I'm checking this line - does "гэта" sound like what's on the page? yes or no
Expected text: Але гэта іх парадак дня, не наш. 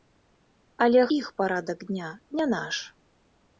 no